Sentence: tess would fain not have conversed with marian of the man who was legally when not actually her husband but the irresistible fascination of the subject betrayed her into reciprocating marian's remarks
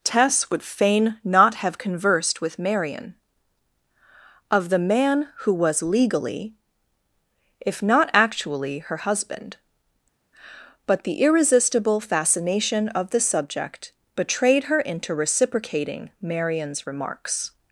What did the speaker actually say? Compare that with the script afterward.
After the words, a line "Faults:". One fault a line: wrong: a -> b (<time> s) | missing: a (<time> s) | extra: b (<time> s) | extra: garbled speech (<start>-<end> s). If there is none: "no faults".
tess would fain not have conversed with marian of the man who was legally if not actually her husband but the irresistible fascination of the subject betrayed her into reciprocating marian's remarks
Faults:
wrong: when -> if (7.6 s)